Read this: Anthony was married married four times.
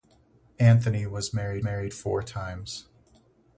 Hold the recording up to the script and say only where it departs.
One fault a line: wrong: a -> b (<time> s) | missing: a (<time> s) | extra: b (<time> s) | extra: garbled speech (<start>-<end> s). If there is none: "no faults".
no faults